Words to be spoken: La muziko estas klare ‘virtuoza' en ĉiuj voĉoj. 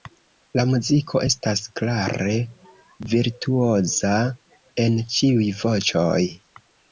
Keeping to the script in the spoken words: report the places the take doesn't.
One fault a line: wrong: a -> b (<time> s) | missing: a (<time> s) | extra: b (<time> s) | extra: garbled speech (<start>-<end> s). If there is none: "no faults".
no faults